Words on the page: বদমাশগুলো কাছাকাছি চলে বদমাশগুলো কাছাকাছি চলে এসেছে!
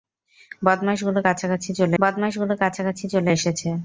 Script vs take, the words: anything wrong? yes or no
no